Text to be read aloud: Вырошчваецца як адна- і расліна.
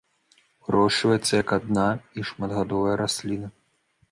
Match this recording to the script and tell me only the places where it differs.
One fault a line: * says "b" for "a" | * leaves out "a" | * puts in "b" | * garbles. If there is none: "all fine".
* puts in "шматгадовая"